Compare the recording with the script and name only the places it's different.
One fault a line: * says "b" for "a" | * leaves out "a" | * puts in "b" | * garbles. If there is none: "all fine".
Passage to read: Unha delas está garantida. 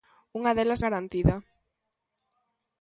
* leaves out "está"